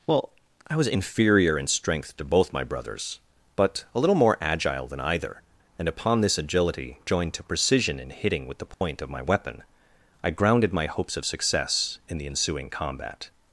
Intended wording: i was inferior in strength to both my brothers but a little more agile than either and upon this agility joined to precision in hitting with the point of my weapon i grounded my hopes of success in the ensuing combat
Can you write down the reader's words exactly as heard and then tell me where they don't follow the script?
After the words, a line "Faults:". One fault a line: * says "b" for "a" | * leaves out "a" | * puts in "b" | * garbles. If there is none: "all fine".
well i was inferior in strength to both my brothers but a little more agile than either and upon this agility joined to precision in hitting with the point of my weapon i grounded my hopes of success in the ensuing combat
Faults:
* puts in "well"